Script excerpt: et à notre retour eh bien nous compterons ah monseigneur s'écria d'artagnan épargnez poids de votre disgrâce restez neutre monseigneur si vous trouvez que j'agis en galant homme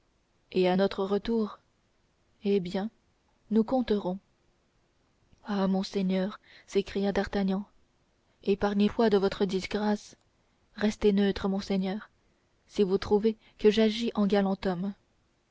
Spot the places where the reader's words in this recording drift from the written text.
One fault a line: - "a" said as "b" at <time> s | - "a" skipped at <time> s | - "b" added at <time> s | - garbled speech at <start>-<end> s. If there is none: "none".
none